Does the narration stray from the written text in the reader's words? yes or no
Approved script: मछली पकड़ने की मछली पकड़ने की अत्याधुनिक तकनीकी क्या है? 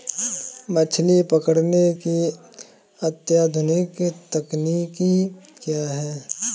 yes